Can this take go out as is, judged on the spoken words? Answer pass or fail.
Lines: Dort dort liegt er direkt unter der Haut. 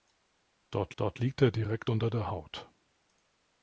pass